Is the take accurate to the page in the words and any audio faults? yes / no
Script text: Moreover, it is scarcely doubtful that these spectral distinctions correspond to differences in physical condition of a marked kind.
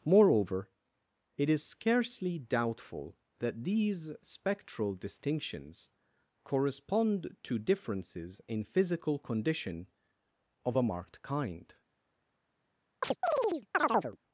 no